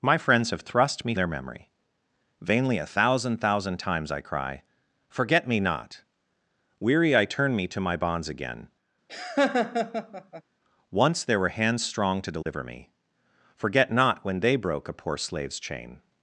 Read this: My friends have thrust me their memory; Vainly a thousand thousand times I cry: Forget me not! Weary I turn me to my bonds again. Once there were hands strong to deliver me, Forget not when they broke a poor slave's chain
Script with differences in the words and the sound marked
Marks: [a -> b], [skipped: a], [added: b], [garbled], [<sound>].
My friends have thrust me their memory; Vainly a thousand thousand times I cry: Forget me not! Weary I turn me to my bonds again. [laugh] Once there were hands strong to deliver [dropout] me, Forget not when they broke a poor slave's chain